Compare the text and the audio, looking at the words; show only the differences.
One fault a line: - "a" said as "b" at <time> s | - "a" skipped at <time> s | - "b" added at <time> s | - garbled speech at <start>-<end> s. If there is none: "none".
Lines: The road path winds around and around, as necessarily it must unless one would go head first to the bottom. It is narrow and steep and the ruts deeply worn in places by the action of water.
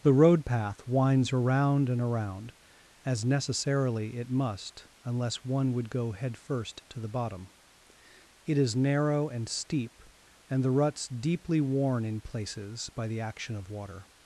none